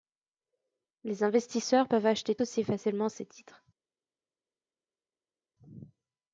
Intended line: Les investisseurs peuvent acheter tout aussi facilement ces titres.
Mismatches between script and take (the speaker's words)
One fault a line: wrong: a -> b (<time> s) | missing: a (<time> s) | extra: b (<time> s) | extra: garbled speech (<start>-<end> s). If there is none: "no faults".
missing: tout (2.4 s)